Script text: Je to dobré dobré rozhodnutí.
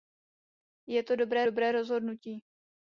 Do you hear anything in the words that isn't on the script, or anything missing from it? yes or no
no